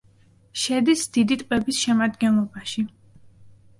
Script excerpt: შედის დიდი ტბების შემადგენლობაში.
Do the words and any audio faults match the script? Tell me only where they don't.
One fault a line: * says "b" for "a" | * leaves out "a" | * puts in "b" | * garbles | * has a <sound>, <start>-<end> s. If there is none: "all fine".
all fine